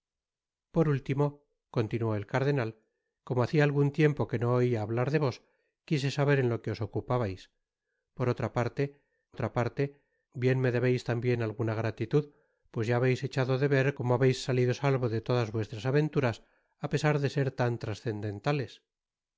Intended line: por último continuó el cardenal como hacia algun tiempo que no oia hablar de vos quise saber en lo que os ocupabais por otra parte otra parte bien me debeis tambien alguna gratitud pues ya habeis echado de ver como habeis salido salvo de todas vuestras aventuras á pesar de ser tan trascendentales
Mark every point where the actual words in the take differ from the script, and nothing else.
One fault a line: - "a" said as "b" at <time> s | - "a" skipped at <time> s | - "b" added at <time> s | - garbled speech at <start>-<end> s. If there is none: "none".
none